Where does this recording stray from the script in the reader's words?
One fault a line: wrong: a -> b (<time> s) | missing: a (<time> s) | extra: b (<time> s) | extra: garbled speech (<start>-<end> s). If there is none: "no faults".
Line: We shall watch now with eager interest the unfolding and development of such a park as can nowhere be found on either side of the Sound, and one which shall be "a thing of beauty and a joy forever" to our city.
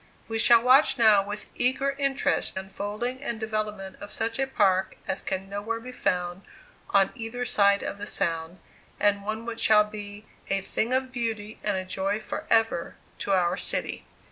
missing: the (2.6 s)